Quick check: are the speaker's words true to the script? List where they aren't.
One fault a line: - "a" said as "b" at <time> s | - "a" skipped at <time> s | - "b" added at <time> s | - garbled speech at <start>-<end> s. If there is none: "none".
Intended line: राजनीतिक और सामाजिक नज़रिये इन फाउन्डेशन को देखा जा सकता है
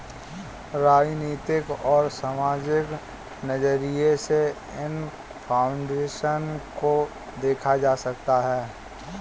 - "से" added at 4.2 s